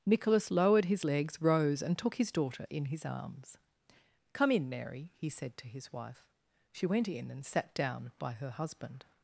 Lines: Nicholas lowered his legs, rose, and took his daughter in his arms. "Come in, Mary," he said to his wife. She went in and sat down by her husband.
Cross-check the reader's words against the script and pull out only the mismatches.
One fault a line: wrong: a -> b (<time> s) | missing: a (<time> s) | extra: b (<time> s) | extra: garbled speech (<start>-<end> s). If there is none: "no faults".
no faults